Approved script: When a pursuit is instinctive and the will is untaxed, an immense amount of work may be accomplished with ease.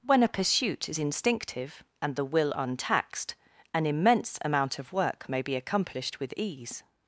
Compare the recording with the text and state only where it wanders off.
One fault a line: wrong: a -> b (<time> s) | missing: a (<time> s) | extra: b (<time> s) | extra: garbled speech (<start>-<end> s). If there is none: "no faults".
missing: is (2.5 s)